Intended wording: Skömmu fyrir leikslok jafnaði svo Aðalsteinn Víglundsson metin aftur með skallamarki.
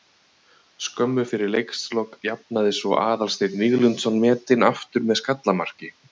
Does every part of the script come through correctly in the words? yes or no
yes